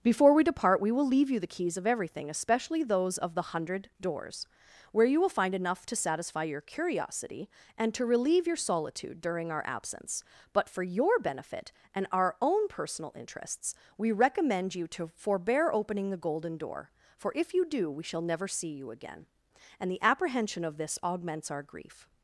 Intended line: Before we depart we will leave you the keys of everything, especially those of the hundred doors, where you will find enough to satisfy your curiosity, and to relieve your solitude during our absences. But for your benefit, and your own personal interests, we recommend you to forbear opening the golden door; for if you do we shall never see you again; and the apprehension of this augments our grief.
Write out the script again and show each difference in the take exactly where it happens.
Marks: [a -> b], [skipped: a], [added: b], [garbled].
Before we depart we will leave you the keys of everything, especially those of the hundred doors, where you will find enough to satisfy your curiosity, and to relieve your solitude during our [absences. -> absence] But for your benefit, and [your -> our] own personal interests, we recommend you to forbear opening the golden door; for if you do we shall never see you again; and the apprehension of this augments our grief.